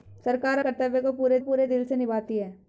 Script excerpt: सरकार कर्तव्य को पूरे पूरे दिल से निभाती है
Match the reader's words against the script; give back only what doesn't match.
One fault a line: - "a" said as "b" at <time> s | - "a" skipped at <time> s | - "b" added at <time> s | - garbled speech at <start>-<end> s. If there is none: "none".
none